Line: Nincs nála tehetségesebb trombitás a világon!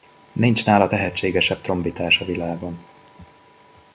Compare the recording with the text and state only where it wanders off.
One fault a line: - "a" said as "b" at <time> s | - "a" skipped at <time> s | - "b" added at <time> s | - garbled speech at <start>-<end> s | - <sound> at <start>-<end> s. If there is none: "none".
none